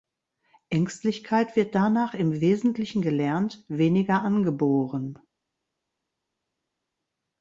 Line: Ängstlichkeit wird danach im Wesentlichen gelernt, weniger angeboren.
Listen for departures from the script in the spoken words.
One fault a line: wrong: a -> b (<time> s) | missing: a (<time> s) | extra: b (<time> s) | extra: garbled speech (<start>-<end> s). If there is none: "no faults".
no faults